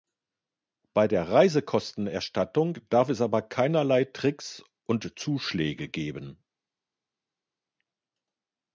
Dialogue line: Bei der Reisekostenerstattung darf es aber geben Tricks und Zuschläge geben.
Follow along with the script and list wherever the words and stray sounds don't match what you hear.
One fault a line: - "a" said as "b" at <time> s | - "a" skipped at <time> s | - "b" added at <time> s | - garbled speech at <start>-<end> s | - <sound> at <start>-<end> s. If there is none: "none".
- "geben" said as "keinerlei" at 3.4 s